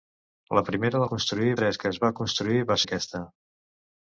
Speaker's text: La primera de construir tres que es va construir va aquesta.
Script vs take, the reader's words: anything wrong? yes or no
no